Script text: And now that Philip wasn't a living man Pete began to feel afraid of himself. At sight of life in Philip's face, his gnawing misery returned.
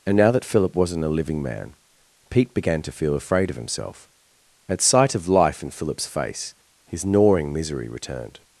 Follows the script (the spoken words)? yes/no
yes